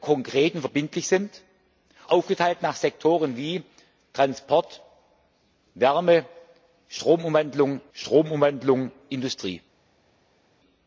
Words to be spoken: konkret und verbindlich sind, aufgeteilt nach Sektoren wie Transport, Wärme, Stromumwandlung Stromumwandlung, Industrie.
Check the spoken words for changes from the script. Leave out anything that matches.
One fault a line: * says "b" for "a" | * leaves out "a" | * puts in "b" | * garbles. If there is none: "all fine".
all fine